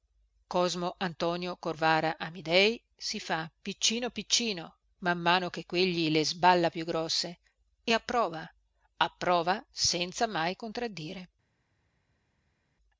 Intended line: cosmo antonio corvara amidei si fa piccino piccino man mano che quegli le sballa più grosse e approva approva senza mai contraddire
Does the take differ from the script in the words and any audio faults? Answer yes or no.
no